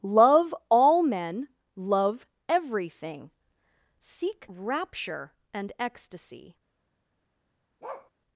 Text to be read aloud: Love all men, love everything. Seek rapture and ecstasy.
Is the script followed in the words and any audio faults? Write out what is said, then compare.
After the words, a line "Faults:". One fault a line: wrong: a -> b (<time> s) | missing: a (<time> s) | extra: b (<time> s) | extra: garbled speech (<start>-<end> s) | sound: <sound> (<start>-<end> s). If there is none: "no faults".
Love all men, love everything. Seek rapture and ecstasy.
Faults:
sound: bark (7.8-8.1 s)